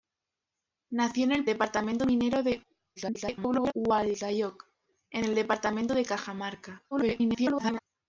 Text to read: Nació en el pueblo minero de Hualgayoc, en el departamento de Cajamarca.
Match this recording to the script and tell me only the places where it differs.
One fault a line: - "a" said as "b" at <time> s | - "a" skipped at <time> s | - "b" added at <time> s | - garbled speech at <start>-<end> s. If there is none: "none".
- "pueblo" said as "departamento" at 1.4 s
- garbled speech at 3.0-3.7 s
- garbled speech at 6.9-7.8 s